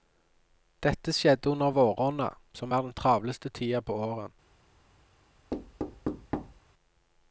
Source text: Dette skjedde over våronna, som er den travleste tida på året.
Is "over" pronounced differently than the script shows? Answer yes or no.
yes